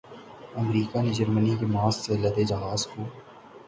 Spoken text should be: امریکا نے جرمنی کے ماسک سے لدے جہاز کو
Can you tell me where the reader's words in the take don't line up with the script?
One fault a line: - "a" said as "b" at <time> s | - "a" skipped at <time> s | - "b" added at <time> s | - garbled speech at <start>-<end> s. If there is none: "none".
none